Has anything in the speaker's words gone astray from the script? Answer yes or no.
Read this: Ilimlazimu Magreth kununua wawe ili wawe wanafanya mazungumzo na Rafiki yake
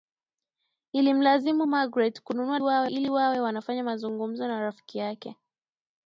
no